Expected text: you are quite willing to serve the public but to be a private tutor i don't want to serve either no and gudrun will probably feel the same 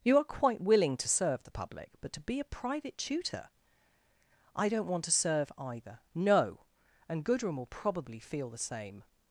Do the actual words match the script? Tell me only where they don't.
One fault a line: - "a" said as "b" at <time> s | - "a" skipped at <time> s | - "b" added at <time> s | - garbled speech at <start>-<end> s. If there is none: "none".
none